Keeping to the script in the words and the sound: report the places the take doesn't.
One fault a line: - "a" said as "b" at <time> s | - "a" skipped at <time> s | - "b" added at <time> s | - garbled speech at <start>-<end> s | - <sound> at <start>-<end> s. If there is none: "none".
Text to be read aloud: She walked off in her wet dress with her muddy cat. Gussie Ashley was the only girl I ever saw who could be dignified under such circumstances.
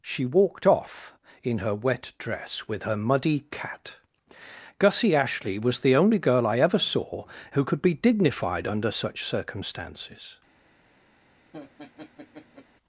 - laugh at 11.5-12.7 s